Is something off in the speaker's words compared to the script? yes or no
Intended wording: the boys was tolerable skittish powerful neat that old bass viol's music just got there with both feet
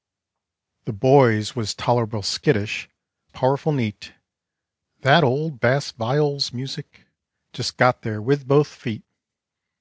no